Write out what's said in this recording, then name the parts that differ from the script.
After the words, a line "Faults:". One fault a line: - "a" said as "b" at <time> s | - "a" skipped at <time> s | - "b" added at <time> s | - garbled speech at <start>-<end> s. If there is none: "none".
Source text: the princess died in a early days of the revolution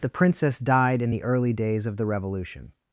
the princess died in the early days of the revolution
Faults:
- "a" said as "the" at 1.1 s